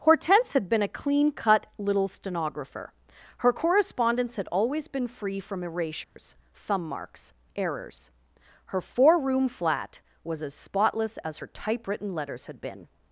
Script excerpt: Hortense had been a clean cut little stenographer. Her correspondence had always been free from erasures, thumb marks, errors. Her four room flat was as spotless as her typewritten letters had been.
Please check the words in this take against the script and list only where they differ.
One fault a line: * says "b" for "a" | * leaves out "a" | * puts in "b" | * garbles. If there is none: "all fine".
all fine